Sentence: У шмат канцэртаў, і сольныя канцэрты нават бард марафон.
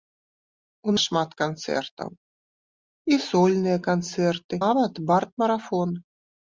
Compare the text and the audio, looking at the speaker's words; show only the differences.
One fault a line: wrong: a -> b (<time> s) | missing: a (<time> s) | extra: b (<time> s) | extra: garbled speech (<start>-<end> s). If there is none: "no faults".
no faults